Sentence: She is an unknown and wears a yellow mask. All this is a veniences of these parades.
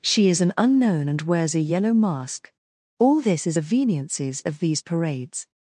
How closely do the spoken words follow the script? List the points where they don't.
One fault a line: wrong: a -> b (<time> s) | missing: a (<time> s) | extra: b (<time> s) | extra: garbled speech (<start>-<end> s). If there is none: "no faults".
no faults